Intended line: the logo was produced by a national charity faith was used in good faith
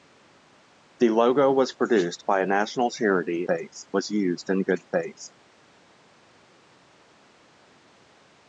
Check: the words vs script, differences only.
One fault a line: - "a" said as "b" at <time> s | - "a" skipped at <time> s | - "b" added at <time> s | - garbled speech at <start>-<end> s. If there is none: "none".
none